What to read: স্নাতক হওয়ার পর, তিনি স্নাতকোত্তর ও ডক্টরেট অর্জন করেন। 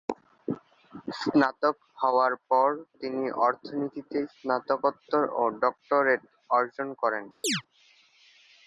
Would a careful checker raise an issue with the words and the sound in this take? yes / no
yes